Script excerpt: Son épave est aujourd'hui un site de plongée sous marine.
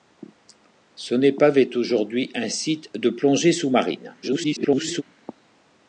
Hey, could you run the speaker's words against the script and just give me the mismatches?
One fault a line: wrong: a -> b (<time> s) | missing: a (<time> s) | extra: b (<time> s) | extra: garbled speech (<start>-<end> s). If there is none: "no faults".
extra: garbled speech (4.2-5.0 s)